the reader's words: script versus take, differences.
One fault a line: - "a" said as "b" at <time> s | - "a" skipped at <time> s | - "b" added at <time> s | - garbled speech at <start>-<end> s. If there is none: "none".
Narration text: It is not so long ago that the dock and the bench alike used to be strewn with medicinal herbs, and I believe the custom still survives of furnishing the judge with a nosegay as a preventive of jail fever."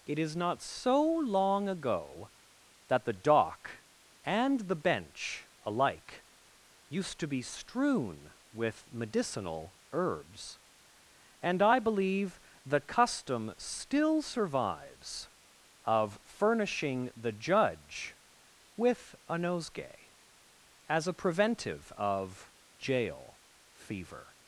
none